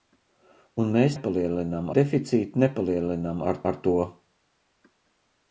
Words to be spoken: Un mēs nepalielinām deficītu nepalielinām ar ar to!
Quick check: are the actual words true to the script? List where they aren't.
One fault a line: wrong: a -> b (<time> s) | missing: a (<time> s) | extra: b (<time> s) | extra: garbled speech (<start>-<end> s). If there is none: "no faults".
no faults